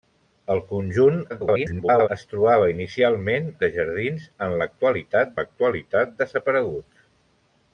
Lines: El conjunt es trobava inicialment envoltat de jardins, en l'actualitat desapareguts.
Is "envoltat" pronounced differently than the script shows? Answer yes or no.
yes